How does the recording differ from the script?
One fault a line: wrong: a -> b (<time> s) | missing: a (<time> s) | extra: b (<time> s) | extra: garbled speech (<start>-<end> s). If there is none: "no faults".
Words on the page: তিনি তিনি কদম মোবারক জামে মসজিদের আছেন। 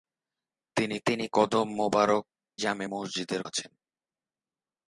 no faults